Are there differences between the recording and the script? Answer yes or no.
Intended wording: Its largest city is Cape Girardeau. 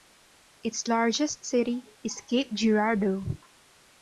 no